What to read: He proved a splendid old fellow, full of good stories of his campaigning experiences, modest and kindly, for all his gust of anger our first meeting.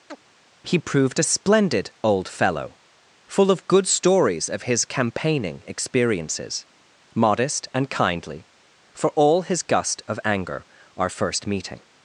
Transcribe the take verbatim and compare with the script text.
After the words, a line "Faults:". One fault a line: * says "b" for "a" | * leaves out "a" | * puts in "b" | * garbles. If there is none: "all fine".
He proved a splendid old fellow, full of good stories of his campaigning experiences, modest and kindly, for all his gust of anger our first meeting.
Faults:
all fine